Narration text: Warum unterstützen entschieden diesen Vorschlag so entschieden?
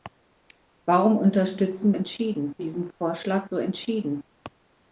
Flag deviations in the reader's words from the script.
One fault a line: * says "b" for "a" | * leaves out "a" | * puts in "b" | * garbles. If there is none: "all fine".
all fine